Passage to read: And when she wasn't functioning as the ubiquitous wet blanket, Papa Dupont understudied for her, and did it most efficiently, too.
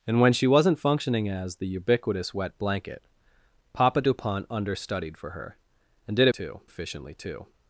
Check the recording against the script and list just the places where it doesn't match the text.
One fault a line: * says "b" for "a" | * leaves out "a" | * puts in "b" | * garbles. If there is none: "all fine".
* says "too" for "most"